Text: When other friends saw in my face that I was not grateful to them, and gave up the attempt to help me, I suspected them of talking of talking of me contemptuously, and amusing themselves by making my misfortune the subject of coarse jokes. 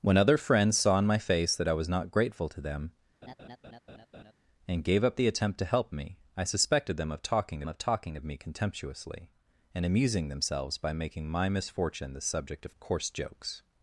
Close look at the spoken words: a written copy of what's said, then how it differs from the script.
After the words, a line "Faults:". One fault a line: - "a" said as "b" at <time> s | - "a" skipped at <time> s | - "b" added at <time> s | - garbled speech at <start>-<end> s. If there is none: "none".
When other friends saw in my face that I was not grateful to them, and gave up the attempt to help me, I suspected them of talking of talking of me contemptuously, and amusing themselves by making my misfortune the subject of coarse jokes.
Faults:
none